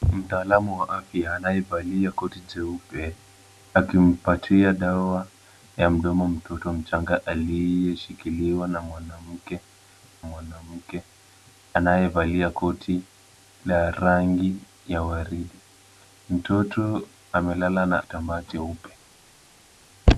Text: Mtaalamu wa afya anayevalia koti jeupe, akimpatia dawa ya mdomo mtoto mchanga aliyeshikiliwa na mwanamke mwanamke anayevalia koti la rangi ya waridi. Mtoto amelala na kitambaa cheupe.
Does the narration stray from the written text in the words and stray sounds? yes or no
no